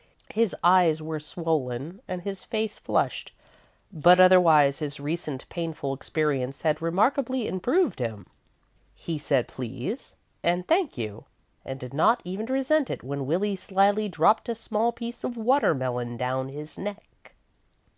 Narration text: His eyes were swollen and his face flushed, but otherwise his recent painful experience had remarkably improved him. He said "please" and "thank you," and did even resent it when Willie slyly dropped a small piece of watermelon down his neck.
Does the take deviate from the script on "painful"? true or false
false